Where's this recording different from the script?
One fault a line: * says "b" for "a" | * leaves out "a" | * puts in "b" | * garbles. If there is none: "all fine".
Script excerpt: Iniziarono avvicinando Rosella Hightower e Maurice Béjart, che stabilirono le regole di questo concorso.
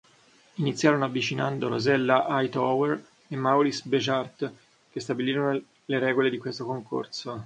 all fine